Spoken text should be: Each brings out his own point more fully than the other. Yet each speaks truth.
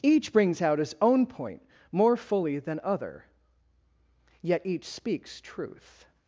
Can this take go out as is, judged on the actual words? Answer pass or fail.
fail